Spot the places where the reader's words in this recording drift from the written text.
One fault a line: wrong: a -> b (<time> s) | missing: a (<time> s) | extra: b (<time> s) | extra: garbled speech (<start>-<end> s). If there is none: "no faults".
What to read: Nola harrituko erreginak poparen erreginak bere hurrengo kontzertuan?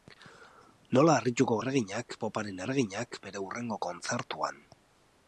no faults